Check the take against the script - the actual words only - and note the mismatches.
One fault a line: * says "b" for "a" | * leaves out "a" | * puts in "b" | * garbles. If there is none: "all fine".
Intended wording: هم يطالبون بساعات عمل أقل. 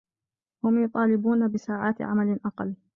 all fine